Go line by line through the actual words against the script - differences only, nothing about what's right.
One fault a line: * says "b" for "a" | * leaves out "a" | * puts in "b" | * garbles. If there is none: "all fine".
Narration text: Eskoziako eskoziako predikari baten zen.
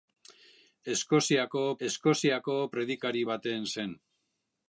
all fine